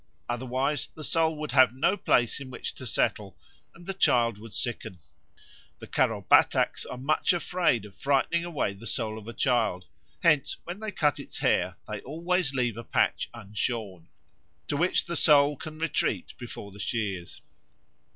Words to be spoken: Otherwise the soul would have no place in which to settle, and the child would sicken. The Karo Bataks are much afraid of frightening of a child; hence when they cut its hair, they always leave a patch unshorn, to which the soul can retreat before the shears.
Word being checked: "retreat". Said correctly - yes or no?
yes